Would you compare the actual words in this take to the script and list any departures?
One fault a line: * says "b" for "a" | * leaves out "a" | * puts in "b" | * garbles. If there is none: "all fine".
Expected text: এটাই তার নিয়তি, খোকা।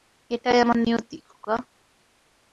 * says "আমার" for "তার"